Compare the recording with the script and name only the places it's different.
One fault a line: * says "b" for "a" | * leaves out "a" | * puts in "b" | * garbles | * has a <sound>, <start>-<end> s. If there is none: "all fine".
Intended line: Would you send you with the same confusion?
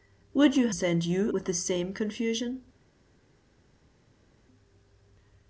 all fine